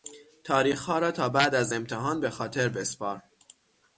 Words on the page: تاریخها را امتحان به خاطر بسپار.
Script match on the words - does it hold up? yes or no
no